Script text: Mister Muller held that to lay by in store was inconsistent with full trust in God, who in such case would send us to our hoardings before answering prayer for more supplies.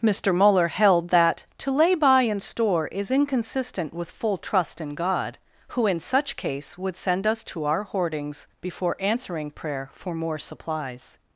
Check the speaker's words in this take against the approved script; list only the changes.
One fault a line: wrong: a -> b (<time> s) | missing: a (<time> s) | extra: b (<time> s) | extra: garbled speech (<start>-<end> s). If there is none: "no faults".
wrong: was -> is (2.9 s)